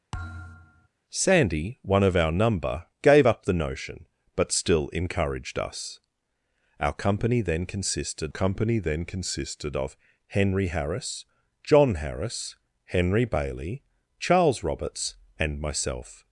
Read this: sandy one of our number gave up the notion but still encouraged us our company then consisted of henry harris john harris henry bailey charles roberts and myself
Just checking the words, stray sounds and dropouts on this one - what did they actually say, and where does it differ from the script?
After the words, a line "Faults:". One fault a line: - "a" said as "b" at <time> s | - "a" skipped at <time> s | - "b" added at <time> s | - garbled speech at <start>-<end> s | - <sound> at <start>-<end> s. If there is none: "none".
sandy one of our number gave up the notion but still encouraged us our company then consisted company then consisted of henry harris john harris henry bailey charles roberts and myself
Faults:
- thud at 0.1-0.9 s
- "company then consisted" added at 8.3 s